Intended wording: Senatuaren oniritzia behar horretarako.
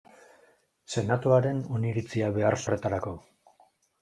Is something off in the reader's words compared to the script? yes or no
no